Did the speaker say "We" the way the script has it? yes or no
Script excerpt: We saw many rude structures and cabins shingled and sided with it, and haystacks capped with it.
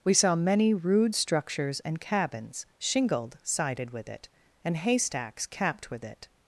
yes